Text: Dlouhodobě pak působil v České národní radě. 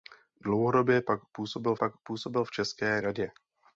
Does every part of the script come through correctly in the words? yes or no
no